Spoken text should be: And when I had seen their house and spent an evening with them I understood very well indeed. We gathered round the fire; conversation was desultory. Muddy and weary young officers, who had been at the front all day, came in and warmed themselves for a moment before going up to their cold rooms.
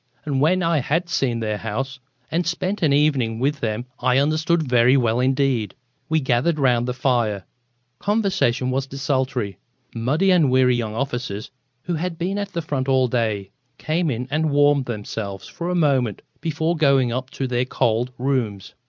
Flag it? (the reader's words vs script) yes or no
no